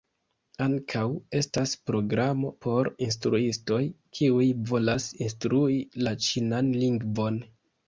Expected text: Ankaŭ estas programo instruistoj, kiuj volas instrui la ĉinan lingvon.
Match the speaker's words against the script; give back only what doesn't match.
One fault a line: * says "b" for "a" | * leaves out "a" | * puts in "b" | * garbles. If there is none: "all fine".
* puts in "por"